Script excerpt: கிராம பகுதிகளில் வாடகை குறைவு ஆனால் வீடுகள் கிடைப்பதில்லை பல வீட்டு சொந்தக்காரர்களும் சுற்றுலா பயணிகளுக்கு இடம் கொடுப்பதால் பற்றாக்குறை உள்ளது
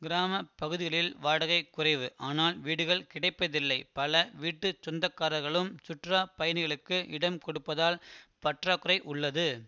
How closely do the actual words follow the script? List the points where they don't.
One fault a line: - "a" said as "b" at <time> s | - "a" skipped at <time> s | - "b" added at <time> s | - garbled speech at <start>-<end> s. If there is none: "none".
none